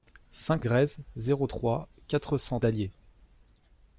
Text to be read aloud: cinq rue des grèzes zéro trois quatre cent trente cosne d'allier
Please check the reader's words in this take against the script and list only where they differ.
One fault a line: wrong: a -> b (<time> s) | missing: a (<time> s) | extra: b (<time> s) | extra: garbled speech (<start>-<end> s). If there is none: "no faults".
missing: rue des (0.7 s)
missing: trente cosne (2.6 s)